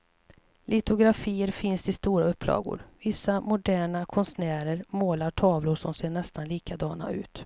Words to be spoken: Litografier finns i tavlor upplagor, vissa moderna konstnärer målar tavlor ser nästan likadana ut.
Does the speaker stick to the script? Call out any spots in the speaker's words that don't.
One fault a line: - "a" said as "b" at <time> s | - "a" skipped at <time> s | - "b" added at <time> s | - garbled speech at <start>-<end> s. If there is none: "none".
- "tavlor" said as "stora" at 1.9 s
- "som" added at 5.7 s